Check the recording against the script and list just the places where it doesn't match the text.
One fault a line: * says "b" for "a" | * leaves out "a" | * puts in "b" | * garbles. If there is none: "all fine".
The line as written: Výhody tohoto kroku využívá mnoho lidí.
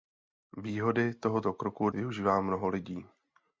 all fine